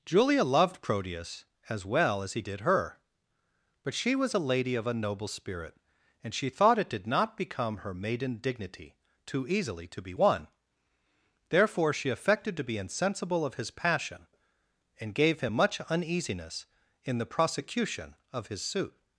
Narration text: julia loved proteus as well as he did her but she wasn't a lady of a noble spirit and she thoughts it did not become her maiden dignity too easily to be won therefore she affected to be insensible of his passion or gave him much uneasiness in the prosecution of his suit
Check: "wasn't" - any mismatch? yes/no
yes